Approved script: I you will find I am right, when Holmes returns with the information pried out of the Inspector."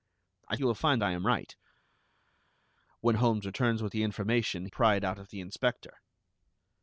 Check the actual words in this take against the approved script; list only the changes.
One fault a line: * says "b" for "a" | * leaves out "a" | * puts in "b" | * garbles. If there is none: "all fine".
all fine